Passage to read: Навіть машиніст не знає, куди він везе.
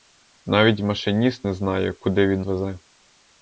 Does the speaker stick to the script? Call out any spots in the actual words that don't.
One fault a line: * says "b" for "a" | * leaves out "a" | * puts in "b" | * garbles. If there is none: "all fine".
all fine